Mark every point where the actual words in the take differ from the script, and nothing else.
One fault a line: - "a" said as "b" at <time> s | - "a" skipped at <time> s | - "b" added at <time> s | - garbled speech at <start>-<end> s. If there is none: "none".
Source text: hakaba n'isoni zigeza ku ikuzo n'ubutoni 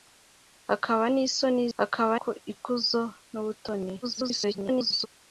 - "zigeza" said as "hakaba" at 1.8 s
- garbled speech at 4.0-5.1 s